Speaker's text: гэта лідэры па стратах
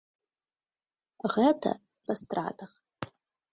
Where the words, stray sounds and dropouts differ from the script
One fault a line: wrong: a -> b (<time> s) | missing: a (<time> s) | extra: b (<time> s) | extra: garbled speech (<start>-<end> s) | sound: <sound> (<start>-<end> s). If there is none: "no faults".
missing: лідэры (1.7 s)